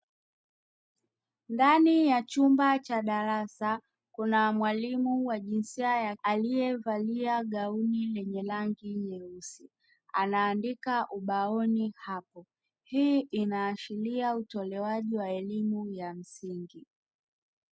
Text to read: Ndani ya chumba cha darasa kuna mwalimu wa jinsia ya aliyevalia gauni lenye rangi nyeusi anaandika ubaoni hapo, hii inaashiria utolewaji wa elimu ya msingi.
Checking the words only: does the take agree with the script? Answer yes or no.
yes